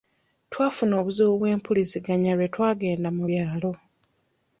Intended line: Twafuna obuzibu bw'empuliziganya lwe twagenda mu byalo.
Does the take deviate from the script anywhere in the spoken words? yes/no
no